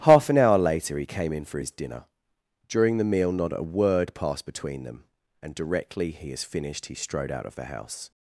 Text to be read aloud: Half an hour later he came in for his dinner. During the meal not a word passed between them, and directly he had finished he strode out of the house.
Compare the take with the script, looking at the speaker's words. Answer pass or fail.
fail